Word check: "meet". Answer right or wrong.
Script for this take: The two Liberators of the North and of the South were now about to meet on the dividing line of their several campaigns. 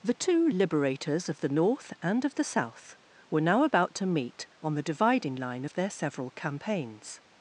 right